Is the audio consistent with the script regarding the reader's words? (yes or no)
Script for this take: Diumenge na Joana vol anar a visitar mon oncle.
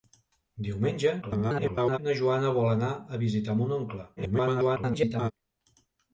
no